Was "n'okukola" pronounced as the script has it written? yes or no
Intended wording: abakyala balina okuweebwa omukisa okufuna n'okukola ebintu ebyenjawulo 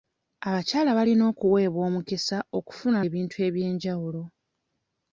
no